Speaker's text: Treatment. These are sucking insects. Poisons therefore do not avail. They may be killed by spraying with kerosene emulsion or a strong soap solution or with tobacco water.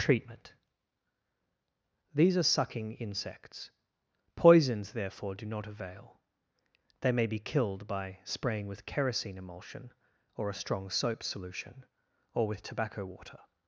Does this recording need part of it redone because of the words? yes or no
no